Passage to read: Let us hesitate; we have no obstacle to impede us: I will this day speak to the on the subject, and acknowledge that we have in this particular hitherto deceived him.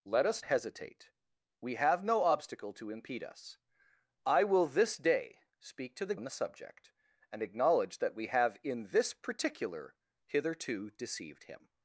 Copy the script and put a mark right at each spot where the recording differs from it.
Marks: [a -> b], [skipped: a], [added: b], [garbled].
Let us hesitate; we have no obstacle to impede us: I will this day speak to the on the subject, and acknowledge that we have in this particular hitherto deceived him.